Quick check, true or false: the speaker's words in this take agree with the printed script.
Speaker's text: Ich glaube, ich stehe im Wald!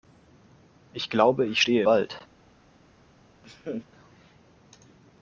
false